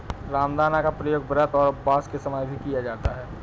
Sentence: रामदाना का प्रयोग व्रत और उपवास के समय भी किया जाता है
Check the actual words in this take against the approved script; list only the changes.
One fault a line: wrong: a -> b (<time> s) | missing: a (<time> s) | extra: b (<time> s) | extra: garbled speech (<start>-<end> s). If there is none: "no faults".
no faults